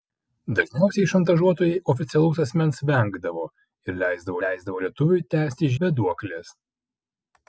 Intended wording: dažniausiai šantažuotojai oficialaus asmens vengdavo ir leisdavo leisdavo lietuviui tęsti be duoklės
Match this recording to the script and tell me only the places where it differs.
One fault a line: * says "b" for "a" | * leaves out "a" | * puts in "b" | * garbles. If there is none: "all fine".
all fine